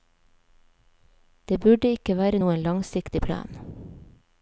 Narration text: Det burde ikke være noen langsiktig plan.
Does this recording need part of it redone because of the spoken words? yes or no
no